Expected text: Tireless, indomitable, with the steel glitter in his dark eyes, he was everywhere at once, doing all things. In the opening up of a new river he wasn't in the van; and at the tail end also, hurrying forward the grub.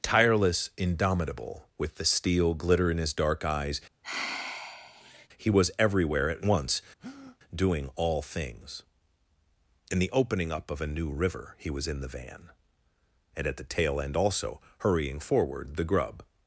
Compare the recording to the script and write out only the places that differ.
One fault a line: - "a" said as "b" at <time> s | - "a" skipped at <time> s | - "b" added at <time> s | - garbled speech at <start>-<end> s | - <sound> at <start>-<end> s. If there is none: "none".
- sigh at 4.0-5.3 s
- breath at 7.0-7.4 s
- "wasn't" said as "was" at 11.7 s